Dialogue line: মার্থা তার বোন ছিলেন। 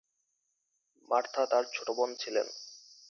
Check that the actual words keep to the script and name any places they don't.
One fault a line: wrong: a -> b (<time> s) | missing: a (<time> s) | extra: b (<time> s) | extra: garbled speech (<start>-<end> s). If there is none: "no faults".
extra: ছোট (1.7 s)